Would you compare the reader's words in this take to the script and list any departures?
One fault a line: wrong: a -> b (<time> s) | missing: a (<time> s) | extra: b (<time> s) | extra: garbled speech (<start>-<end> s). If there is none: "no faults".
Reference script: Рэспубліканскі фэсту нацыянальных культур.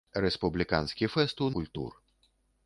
missing: нацыянальных (1.5 s)